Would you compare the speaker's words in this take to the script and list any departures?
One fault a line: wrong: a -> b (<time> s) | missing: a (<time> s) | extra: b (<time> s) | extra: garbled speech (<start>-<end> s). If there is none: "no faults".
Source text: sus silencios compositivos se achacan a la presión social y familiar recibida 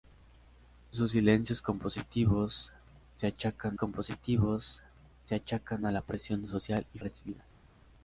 extra: compositivos se achacan (3.8 s)
missing: familiar (7.0 s)